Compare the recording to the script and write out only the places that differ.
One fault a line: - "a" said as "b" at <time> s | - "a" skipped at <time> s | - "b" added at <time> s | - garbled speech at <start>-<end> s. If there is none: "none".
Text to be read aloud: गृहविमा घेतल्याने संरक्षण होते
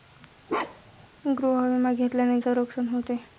none